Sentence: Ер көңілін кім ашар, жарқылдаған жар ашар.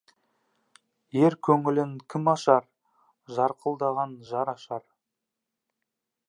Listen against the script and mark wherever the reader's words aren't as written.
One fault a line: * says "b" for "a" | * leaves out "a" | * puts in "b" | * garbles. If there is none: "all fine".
all fine